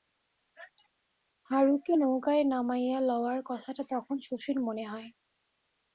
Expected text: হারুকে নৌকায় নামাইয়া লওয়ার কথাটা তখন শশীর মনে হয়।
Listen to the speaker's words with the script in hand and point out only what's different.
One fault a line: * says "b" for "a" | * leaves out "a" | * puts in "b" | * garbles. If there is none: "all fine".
all fine